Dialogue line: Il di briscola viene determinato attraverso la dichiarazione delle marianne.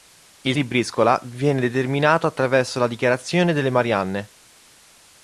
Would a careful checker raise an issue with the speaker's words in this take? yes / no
no